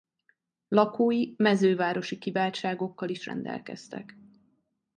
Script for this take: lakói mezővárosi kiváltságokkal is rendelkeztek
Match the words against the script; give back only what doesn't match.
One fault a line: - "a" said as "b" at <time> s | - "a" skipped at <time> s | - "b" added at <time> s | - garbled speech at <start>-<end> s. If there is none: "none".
none